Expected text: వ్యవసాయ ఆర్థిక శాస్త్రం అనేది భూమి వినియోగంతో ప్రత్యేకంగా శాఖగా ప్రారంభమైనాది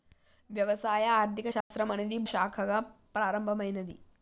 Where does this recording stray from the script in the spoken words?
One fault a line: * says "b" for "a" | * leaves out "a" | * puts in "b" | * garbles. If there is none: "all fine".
* leaves out "భూమి వినియోగంతో ప్రత్యేకంగా"